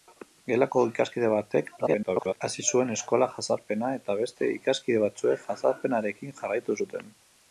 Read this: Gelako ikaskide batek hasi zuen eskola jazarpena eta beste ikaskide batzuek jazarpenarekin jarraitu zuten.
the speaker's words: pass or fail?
fail